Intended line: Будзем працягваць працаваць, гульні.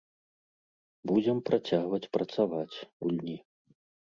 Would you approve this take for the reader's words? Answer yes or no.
yes